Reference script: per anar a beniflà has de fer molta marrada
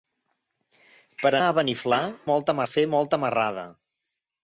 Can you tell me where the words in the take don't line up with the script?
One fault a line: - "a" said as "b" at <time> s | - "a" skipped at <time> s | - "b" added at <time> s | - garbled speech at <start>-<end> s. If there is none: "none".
- "anar" skipped at 1.3 s
- "has" said as "molta" at 2.3 s